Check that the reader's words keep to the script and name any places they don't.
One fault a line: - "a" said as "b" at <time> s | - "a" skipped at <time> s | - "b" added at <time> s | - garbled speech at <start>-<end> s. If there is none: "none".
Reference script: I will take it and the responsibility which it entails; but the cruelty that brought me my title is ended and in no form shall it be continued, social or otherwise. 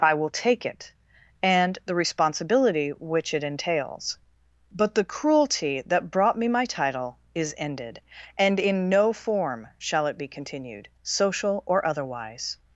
none